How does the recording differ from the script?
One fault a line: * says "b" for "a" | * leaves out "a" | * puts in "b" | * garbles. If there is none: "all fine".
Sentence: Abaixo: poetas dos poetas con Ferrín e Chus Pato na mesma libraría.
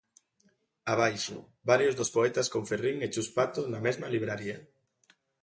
* says "varios" for "poetas"